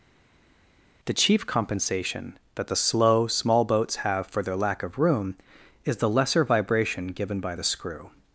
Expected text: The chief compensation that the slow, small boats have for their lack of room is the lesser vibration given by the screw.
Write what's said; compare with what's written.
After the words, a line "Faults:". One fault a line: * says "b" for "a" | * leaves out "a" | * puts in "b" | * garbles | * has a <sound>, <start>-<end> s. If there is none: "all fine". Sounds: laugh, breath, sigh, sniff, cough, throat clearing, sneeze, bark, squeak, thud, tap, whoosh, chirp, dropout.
The chief compensation that the slow, small boats have for their lack of room is the lesser vibration given by the screw.
Faults:
all fine